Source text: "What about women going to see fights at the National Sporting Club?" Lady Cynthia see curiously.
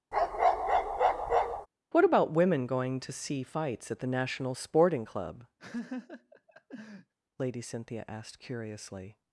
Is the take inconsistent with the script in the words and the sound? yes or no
yes